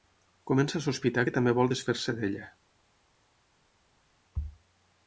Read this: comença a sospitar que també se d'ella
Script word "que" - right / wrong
right